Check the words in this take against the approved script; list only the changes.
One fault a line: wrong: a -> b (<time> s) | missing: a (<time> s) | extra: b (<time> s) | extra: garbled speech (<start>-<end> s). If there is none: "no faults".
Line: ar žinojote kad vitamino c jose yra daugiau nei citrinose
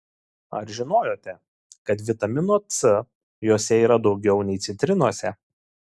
no faults